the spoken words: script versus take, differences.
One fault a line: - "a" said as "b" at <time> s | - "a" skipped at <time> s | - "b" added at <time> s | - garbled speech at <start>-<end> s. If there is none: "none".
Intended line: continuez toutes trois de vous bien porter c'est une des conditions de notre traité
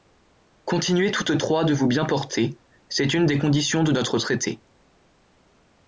none